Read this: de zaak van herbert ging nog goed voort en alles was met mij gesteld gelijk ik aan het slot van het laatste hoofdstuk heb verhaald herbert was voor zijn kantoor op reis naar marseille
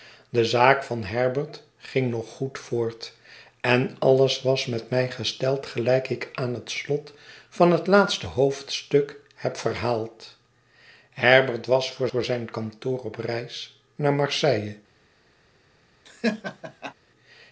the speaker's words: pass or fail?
fail